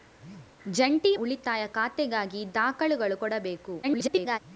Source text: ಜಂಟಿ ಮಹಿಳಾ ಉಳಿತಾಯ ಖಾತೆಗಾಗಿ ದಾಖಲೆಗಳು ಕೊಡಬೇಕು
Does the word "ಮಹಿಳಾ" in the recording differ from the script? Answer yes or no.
yes